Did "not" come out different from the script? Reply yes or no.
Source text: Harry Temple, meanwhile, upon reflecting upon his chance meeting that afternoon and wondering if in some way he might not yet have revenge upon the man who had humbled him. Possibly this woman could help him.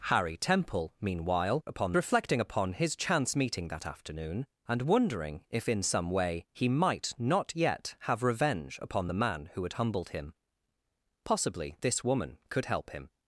no